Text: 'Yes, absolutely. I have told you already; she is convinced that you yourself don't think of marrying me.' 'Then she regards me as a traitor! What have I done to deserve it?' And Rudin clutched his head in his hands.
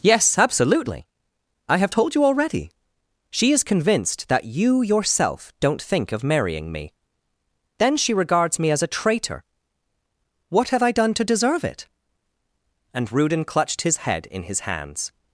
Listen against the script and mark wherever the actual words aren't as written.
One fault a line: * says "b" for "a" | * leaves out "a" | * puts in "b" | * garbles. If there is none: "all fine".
all fine